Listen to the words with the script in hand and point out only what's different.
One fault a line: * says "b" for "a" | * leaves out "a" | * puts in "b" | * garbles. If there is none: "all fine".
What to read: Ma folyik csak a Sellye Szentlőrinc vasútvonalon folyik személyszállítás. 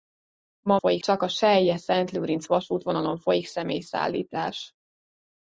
all fine